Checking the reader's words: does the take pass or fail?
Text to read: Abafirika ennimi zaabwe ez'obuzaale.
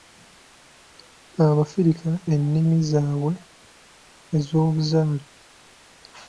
pass